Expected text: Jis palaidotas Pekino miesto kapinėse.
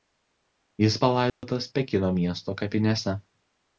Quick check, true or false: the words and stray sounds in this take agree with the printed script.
false